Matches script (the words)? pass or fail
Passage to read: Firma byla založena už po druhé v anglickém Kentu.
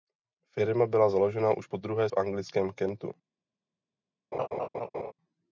pass